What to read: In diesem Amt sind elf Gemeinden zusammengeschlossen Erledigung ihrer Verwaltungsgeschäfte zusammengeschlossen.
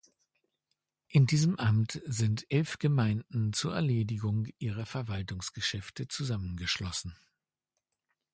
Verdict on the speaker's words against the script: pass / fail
fail